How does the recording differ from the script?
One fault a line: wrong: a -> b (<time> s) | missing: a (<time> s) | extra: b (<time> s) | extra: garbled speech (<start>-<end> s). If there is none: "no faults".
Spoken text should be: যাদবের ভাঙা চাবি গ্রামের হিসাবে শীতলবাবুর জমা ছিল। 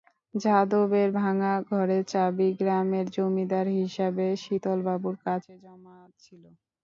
extra: ঘরের (1.7 s)
extra: জমিদার (3.1 s)
extra: কাছে (5.2 s)